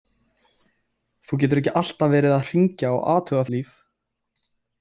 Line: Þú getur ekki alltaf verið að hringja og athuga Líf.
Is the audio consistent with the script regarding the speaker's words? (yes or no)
yes